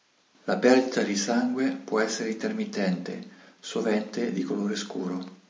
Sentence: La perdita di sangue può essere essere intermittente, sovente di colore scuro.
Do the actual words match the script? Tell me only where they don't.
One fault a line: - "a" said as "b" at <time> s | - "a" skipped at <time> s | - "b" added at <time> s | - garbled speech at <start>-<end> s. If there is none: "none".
- "essere" skipped at 2.3 s